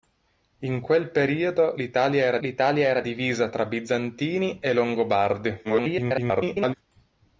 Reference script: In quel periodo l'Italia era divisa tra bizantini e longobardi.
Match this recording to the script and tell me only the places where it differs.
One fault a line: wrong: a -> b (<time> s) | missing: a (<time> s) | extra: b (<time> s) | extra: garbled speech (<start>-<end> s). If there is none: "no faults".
extra: l'Italia era (2.4 s)
extra: garbled speech (5.6-6.7 s)